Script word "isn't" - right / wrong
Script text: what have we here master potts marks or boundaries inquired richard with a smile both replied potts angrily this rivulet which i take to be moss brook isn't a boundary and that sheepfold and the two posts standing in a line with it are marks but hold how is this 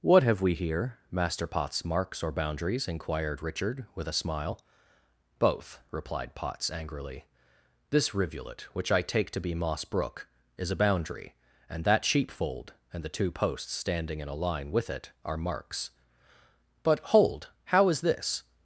wrong